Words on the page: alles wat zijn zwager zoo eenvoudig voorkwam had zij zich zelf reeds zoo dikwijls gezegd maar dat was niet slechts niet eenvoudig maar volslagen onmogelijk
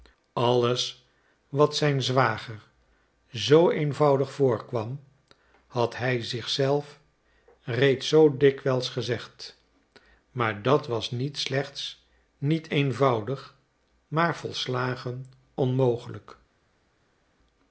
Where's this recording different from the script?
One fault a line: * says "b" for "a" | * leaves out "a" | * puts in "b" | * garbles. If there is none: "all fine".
* says "hij" for "zij"